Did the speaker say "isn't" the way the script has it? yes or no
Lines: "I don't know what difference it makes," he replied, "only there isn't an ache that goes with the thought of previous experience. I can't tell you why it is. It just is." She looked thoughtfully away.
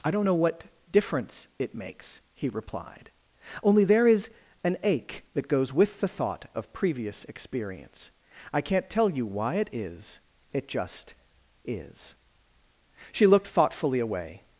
no